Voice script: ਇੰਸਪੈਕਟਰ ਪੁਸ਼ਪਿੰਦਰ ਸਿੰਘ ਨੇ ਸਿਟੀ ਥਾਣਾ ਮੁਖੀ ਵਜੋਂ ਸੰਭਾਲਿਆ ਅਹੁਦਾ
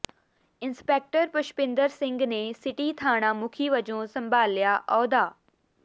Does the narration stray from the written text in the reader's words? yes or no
no